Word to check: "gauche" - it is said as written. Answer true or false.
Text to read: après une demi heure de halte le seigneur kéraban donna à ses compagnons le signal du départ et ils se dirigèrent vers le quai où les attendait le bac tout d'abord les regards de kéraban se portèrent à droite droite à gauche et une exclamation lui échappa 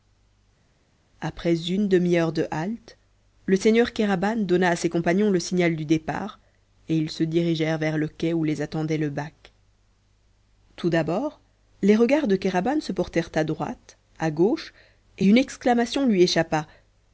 true